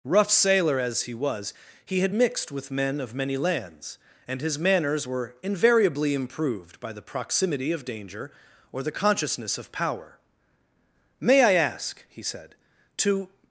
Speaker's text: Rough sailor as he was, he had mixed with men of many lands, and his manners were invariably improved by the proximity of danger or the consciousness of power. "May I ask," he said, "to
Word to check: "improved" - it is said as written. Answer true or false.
true